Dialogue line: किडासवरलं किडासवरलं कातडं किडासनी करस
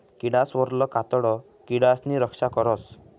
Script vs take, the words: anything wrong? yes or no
yes